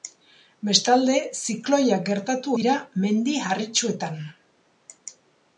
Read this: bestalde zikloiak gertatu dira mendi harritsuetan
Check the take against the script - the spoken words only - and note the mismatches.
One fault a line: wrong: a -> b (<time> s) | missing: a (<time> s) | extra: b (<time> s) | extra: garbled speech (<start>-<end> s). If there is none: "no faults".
no faults